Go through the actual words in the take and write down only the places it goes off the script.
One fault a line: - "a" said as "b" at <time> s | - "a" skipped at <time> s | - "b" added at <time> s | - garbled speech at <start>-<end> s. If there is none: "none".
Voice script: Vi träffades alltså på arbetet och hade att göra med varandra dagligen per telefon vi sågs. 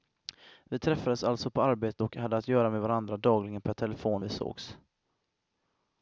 none